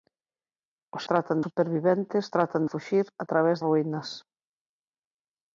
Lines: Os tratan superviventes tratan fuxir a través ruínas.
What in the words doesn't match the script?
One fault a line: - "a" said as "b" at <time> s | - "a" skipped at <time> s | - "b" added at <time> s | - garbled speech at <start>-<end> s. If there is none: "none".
none